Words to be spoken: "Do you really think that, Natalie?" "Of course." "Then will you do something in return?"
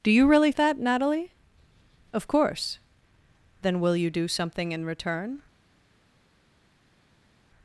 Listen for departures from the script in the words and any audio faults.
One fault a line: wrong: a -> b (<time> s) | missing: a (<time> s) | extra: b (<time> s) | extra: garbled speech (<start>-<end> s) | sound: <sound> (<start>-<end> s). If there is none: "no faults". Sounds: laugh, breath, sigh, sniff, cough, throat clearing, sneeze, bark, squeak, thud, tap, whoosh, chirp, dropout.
missing: think (0.5 s)